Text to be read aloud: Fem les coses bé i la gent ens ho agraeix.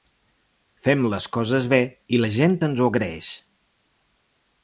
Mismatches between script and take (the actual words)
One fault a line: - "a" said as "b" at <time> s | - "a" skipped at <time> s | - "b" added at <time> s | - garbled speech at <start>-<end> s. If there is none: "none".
none